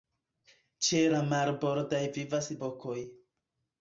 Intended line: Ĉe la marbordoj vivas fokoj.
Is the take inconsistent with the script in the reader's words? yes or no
no